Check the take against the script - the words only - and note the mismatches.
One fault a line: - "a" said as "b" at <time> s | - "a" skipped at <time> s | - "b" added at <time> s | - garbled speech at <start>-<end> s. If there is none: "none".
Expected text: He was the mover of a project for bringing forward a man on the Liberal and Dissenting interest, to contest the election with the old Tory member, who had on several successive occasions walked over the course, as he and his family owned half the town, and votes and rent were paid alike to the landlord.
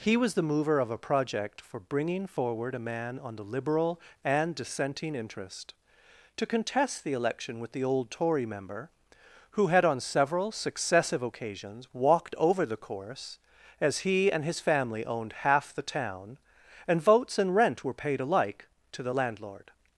none